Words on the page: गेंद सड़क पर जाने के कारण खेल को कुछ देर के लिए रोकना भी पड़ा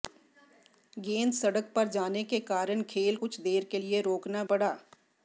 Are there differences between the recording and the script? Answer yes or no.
yes